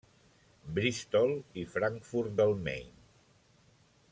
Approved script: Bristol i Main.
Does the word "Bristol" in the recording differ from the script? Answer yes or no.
no